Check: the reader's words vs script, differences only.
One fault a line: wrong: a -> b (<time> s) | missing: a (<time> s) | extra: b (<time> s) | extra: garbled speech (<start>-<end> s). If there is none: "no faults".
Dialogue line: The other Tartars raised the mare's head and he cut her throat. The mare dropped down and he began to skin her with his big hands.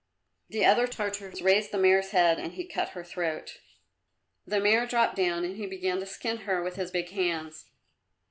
no faults